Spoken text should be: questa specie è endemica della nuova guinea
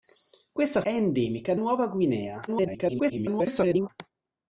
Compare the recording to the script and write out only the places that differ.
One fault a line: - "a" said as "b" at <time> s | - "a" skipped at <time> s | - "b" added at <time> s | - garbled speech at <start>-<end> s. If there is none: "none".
- "specie" skipped at 0.8 s
- "della" skipped at 1.5 s
- garbled speech at 2.5-3.9 s